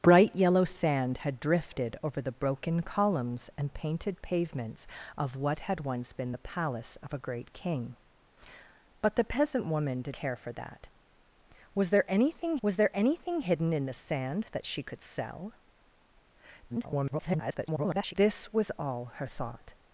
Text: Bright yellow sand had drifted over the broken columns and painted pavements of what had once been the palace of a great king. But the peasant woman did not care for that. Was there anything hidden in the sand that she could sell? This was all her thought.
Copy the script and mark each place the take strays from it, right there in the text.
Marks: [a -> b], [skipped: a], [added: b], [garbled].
Bright yellow sand had drifted over the broken columns and painted pavements of what had once been the palace of a great king. But the peasant woman did [skipped: not] care for that. Was there anything [added: was there anything] hidden in the sand that she could sell? [garbled] This was all her thought.